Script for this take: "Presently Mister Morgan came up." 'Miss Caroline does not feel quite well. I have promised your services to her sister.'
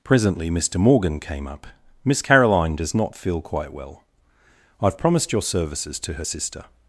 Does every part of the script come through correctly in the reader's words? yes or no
yes